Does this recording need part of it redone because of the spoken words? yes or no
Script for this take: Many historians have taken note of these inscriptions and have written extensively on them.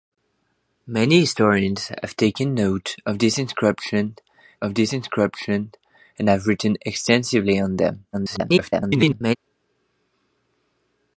yes